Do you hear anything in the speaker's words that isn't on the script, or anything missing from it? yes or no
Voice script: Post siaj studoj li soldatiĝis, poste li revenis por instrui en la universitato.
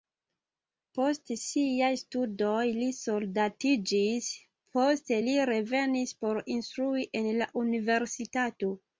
no